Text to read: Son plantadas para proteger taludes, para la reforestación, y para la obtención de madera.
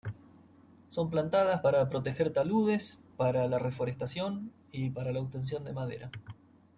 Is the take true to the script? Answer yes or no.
yes